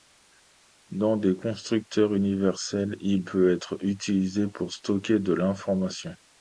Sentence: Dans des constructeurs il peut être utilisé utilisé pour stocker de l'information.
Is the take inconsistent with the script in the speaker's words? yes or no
yes